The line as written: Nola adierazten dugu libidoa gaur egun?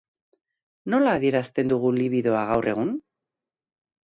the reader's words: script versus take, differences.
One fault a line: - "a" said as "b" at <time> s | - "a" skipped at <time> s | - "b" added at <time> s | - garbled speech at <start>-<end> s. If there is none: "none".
none